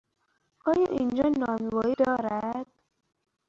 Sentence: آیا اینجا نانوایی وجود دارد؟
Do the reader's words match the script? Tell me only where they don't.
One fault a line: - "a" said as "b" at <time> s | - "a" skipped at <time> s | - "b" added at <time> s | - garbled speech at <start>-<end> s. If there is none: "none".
- "وجود" skipped at 1.9 s